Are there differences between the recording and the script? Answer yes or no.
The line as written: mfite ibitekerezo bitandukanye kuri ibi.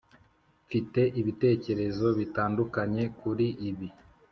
no